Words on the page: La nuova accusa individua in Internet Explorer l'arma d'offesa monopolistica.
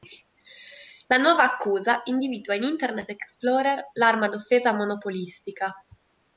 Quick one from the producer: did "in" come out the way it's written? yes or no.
yes